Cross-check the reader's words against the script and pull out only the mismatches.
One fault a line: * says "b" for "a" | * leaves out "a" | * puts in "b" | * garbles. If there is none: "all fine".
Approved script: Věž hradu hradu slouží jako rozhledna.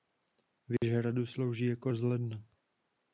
* leaves out "hradu"